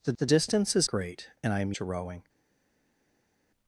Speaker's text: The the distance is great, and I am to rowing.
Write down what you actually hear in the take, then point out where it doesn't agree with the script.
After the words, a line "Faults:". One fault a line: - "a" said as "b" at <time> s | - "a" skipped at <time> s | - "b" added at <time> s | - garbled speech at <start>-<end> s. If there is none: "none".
The the distance is great, and I am to rowing.
Faults:
none